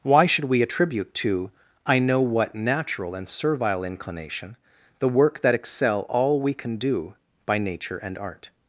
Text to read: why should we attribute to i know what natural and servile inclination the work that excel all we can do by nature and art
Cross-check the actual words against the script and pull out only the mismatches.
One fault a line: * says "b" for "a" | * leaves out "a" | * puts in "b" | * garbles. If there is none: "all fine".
all fine